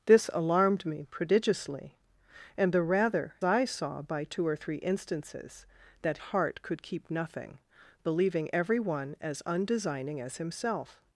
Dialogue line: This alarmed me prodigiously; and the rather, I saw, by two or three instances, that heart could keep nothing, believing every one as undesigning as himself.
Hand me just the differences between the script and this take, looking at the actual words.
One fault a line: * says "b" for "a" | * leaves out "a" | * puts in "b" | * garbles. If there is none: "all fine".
all fine